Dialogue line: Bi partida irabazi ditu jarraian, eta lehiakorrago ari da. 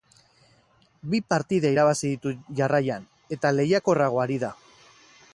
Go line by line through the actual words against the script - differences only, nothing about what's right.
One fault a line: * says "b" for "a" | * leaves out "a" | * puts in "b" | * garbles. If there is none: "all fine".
all fine